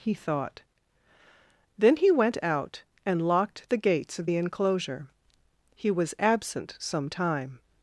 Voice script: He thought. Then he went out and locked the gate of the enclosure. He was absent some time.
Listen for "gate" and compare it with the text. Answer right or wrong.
wrong